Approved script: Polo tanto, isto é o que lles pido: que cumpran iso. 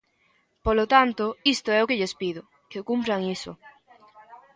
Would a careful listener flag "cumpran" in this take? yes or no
no